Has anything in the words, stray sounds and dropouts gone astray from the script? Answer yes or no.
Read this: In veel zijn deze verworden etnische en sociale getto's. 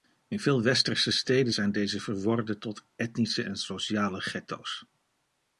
yes